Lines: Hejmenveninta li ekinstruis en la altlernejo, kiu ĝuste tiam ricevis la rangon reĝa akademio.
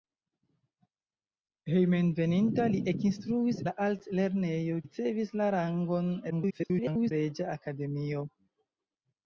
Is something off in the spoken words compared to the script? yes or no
yes